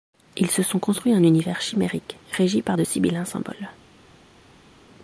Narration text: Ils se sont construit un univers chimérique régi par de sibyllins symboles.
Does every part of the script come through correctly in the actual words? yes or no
yes